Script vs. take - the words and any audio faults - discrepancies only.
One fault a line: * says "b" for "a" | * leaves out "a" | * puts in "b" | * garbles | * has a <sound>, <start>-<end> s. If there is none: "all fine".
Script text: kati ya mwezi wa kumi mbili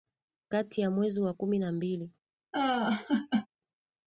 * puts in "na"
* has a laugh, 2.5-3.5 s